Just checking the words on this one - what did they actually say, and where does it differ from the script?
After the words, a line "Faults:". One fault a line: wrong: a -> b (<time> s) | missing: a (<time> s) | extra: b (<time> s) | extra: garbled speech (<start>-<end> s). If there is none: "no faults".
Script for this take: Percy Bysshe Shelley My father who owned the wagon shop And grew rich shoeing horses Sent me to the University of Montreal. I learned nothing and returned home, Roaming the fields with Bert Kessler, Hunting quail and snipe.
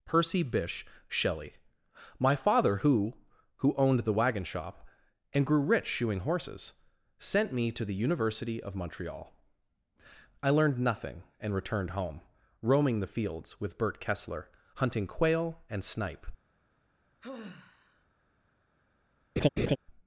Percy Bysshe Shelley My father who who owned the wagon shop And grew rich shoeing horses Sent me to the University of Montreal. I learned nothing and returned home, Roaming the fields with Bert Kessler, Hunting quail and snipe.
Faults:
extra: who (3.6 s)